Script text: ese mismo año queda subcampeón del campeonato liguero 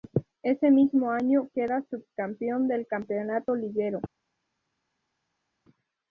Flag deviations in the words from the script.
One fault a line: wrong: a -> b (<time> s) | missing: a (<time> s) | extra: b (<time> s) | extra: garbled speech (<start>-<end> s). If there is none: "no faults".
no faults